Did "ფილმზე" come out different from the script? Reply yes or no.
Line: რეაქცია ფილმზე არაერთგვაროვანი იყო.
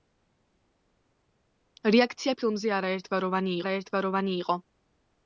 no